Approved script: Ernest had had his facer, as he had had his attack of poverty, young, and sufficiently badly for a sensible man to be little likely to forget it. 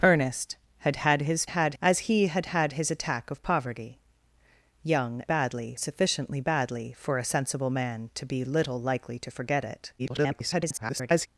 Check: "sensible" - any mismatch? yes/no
no